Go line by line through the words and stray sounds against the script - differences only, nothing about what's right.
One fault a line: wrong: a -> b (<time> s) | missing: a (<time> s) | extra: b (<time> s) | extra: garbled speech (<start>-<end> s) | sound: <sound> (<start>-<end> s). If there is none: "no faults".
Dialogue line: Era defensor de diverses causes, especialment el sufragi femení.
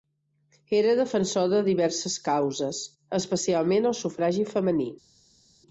no faults